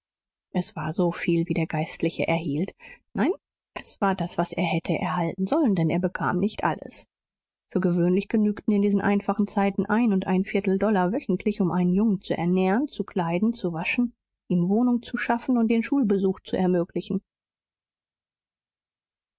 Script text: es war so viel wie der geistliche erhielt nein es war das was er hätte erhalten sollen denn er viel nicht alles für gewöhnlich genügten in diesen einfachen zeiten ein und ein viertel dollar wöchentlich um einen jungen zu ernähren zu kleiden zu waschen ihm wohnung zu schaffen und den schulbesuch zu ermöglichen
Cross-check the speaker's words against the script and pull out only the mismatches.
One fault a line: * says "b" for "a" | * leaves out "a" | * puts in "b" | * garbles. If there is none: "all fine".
* says "bekam" for "viel"